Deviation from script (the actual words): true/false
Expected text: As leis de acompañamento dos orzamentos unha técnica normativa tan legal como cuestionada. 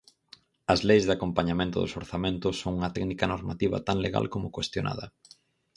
true